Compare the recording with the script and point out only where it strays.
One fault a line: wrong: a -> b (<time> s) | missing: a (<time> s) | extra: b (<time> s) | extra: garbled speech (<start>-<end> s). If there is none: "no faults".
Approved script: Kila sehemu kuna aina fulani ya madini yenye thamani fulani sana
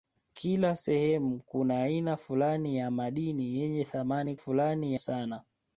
no faults